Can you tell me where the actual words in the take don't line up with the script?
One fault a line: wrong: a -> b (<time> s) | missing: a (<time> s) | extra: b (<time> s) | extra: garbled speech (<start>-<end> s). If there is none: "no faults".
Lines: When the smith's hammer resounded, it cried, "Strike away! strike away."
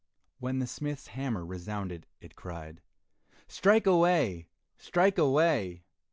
no faults